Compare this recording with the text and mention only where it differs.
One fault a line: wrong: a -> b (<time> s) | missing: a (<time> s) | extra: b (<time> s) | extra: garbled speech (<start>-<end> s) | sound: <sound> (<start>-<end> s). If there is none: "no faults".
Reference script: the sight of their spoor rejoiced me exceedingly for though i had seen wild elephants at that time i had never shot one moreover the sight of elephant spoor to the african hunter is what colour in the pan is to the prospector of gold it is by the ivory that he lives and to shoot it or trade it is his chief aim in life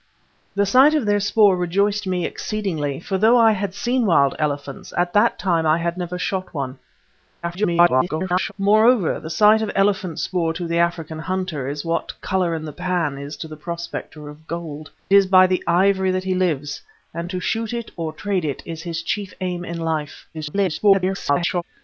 extra: garbled speech (7.4-8.5 s)
missing: it (14.9 s)
extra: garbled speech (20.3-21.6 s)